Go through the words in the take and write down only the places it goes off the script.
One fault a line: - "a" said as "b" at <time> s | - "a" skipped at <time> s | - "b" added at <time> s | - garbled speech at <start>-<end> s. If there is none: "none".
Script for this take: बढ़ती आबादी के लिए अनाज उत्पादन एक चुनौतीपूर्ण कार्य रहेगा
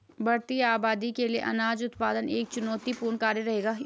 none